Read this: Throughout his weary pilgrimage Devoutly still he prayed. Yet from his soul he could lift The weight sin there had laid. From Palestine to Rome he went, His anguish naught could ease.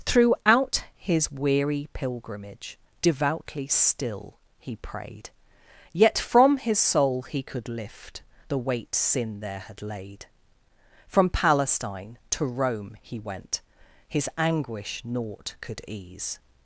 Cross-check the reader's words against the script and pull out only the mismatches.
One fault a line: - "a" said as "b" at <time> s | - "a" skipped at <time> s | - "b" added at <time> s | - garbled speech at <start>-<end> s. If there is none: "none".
none